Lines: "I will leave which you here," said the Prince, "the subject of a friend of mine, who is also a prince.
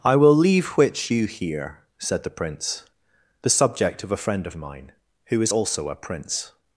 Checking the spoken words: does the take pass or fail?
pass